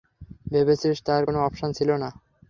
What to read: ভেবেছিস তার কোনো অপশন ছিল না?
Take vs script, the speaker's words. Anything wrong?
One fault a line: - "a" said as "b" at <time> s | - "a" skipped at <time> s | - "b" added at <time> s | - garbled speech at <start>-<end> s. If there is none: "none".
none